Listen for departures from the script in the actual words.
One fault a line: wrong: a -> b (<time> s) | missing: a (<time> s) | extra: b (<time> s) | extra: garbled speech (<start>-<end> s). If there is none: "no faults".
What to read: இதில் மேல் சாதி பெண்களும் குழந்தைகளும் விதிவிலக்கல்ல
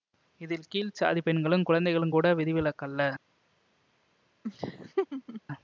wrong: மேல் -> கீழ் (0.7 s)
extra: கூட (2.1 s)